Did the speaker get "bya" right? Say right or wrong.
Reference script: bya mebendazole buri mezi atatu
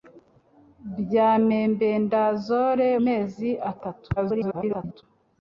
right